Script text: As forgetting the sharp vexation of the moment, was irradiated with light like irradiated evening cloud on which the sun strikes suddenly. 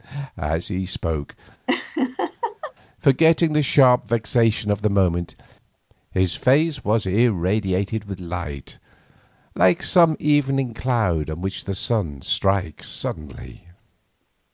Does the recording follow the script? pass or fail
fail